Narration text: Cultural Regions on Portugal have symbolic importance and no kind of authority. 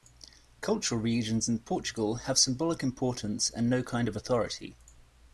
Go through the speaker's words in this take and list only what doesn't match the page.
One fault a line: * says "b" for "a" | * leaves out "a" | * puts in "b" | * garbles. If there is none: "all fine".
* says "in" for "on"